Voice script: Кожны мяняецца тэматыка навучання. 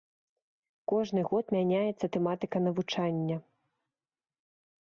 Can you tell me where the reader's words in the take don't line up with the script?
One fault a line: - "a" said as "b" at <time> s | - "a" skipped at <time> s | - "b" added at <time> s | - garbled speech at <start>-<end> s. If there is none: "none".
- "год" added at 1.3 s